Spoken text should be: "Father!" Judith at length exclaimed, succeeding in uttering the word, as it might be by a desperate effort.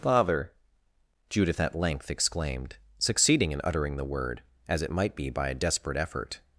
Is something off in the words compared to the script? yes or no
no